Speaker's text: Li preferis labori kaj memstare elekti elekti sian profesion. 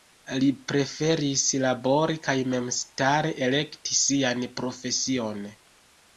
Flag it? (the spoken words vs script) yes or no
yes